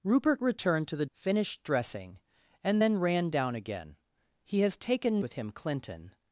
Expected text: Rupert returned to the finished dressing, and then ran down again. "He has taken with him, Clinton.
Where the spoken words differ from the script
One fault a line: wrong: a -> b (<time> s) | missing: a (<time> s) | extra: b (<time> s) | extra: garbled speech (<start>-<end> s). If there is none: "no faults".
no faults